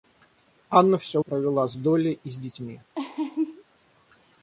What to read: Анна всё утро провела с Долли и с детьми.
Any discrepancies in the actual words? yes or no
yes